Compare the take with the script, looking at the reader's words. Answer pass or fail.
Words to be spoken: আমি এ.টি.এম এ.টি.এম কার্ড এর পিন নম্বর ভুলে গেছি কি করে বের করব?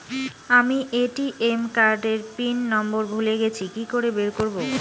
fail